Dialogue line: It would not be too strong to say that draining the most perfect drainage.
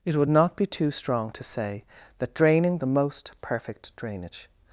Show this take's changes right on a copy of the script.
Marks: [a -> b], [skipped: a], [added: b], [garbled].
It would not be too strong to say that draining the most perfect drainage.